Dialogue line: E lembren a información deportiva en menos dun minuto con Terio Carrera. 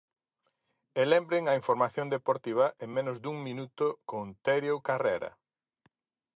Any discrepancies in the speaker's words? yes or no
no